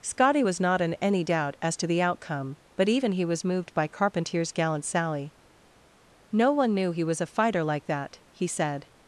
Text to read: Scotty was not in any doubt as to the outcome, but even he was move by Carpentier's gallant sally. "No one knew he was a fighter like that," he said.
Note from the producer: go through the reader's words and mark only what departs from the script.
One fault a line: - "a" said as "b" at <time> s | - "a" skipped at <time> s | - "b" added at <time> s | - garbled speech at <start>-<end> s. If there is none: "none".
- "move" said as "moved" at 3.4 s